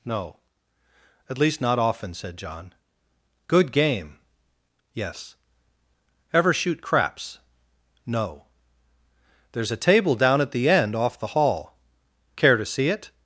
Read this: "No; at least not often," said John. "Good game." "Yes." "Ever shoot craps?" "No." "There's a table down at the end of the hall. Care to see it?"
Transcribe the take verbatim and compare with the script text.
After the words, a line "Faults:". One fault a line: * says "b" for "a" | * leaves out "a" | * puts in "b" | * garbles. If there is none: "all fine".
"No; at least not often," said John. "Good game." "Yes." "Ever shoot craps?" "No." "There's a table down at the end off the hall. Care to see it?"
Faults:
* says "off" for "of"